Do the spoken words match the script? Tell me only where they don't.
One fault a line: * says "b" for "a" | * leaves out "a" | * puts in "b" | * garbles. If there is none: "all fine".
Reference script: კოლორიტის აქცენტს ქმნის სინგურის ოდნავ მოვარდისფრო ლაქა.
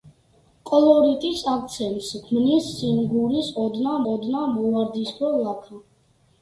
* puts in "ოდნავ"